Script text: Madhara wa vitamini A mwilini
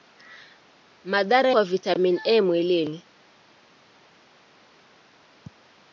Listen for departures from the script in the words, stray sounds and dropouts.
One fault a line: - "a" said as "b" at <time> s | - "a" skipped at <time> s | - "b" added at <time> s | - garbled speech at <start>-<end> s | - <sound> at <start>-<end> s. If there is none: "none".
none